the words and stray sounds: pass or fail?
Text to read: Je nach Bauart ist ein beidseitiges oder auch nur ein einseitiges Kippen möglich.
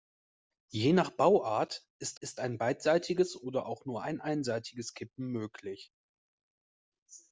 fail